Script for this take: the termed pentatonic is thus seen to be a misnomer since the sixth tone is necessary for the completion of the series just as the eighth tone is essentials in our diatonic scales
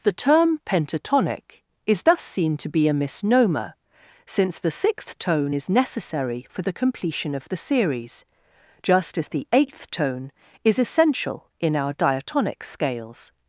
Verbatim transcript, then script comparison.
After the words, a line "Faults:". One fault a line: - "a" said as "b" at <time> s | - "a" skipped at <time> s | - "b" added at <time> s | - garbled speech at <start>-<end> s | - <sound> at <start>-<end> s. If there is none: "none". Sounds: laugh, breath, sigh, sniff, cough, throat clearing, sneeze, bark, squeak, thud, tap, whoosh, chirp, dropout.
the term pentatonic is thus seen to be a misnomer since the sixth tone is necessary for the completion of the series just as the eighth tone is essential in our diatonic scales
Faults:
- "termed" said as "term" at 0.1 s
- "essentials" said as "essential" at 10.8 s